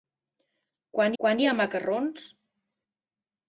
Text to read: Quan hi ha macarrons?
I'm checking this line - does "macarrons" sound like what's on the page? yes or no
yes